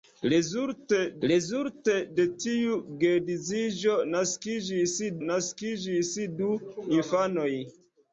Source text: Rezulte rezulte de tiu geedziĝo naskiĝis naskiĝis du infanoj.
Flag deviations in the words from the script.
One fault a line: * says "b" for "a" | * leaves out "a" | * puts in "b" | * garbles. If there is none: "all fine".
all fine